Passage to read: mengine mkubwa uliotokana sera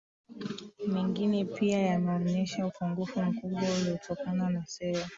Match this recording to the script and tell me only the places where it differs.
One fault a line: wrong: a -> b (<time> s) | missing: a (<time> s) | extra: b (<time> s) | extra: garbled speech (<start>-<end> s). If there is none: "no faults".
extra: pia yameonyesha upungufu (1.4 s)
extra: na (4.5 s)